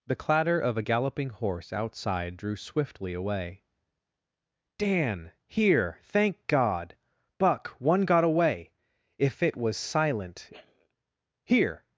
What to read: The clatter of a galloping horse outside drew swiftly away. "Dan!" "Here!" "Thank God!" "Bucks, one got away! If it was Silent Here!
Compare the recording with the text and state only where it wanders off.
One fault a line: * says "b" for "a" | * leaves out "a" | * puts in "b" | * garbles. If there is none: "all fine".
* says "Buck" for "Bucks"